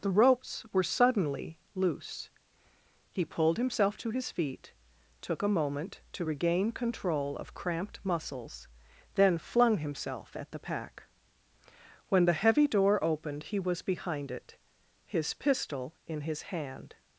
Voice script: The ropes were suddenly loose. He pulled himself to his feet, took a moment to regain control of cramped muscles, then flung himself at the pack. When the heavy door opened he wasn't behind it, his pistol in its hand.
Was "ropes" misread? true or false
false